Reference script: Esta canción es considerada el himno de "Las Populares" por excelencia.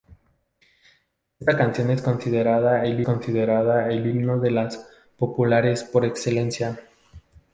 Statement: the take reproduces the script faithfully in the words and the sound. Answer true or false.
false